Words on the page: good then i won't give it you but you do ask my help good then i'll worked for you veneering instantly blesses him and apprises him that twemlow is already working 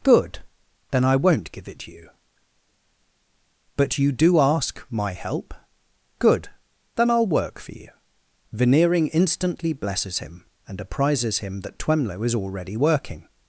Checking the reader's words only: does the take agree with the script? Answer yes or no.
no